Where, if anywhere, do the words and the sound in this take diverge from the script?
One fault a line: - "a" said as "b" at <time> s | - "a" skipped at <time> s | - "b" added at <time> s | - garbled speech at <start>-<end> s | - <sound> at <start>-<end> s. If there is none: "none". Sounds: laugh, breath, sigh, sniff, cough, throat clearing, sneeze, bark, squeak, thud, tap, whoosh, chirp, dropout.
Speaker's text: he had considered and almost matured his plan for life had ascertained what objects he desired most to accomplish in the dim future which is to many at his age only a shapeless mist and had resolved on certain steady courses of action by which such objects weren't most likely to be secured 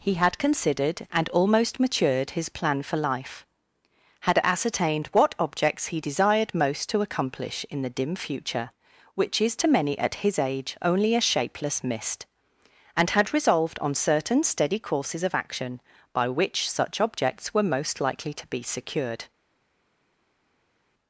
- "weren't" said as "were" at 17.5 s